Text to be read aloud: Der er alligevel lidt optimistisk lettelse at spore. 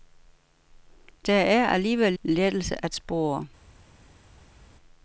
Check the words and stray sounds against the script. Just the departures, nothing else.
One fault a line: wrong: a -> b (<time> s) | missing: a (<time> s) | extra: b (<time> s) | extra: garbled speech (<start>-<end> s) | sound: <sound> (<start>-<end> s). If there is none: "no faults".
missing: lidt optimistisk (2.1 s)